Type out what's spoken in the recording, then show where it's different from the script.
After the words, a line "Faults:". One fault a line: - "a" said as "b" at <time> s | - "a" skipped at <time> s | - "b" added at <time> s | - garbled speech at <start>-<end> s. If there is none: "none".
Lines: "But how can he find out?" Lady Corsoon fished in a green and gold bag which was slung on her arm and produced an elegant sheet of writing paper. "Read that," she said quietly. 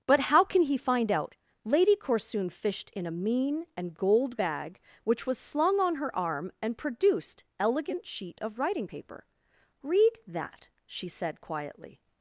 "But how can he find out?" Lady Corsoon fished in a mean and gold bag which was slung on her arm and produced elegant sheet of writing paper. "Read that," she said quietly.
Faults:
- "green" said as "mean" at 3.1 s
- "an" skipped at 7.4 s